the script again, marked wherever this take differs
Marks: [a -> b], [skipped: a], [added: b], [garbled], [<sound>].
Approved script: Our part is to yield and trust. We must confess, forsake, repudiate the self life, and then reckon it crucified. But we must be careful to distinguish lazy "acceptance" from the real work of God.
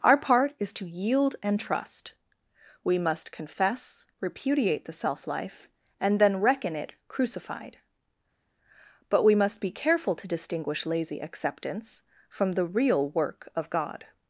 Our part is to yield and trust. We must confess, [skipped: forsake,] repudiate the self life, and then reckon it crucified. But we must be careful to distinguish lazy "acceptance" from the real work of God.